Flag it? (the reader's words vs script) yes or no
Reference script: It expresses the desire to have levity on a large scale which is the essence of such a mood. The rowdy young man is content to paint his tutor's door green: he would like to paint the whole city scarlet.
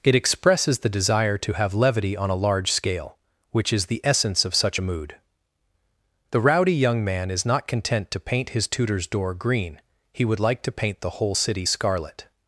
yes